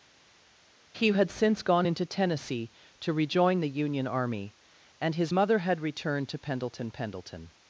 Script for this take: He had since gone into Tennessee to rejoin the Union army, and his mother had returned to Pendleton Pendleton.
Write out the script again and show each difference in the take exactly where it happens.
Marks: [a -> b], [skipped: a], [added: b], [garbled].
He had since gone into Tennessee to rejoin the Union army, and his mother had returned to Pendleton Pendleton.